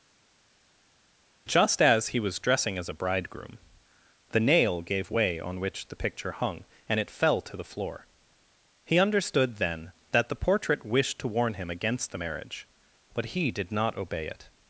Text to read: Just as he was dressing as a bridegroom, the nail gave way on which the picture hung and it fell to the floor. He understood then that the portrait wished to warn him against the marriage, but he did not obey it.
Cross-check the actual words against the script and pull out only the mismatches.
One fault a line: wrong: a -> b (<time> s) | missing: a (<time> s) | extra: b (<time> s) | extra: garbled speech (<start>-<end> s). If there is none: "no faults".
no faults